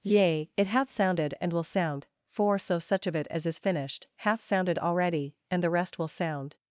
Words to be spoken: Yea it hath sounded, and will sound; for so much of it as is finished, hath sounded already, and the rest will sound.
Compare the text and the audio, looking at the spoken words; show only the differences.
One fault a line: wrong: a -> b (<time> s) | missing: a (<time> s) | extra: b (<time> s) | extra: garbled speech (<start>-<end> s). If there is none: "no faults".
wrong: much -> such (2.8 s)